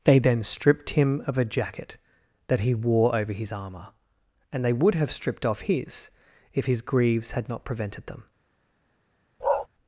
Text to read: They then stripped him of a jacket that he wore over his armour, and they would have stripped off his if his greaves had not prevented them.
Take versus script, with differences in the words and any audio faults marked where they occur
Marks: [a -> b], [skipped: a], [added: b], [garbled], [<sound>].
They then stripped him of a jacket that he wore over his armour, and they would have stripped off his if his greaves had not prevented them. [bark]